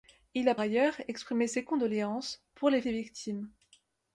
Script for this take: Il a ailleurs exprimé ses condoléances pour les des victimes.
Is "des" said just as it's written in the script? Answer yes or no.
yes